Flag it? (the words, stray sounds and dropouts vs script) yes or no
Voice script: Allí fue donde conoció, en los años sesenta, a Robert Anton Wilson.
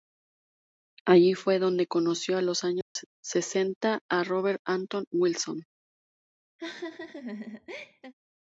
yes